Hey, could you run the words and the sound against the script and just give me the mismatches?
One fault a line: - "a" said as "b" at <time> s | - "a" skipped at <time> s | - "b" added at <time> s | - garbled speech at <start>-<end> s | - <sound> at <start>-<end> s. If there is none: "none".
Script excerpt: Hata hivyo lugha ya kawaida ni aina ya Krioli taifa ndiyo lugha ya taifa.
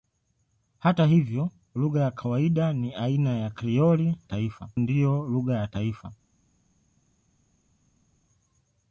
none